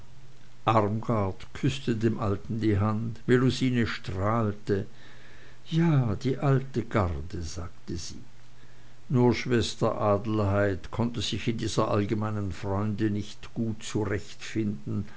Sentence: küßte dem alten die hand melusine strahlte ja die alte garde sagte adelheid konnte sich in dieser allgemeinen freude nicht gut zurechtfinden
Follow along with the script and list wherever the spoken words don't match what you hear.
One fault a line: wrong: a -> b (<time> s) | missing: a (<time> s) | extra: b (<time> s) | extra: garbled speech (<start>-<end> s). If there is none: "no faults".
extra: sie nur schwester (8.0 s)